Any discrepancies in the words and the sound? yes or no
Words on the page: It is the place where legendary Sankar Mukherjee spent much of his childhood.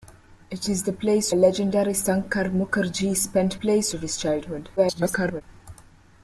yes